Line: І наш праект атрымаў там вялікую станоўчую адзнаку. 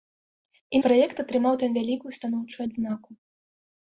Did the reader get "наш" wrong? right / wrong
wrong